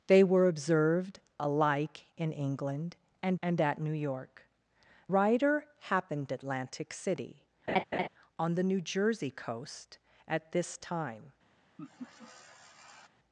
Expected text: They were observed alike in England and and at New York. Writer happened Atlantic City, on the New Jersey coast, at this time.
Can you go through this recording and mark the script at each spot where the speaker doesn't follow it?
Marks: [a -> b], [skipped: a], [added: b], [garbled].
They were observed alike in England and and at New York. Writer happened Atlantic City, on the New Jersey coast, at this time.